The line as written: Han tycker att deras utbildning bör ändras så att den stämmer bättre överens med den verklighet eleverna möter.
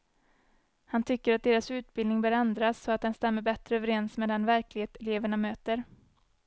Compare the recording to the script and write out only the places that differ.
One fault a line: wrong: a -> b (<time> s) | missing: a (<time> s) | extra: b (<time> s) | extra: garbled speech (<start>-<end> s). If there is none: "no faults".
no faults